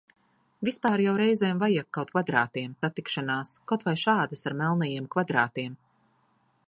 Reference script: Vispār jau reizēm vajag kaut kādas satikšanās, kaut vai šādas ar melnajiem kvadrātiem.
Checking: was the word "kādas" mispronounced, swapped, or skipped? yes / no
yes